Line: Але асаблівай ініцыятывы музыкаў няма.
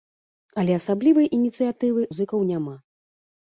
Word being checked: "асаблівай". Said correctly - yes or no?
yes